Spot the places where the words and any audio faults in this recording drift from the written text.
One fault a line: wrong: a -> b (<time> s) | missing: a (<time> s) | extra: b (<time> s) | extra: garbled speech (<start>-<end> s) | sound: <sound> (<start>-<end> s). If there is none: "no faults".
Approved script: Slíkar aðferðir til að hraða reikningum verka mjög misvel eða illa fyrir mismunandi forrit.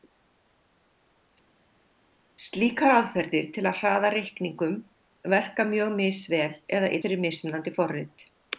missing: illa (7.0 s)